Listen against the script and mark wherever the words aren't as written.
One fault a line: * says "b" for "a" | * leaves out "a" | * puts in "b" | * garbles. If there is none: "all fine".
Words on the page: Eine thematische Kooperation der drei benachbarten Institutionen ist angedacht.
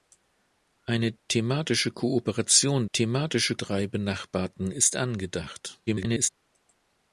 * says "thematische" for "der"
* leaves out "Institutionen"
* garbles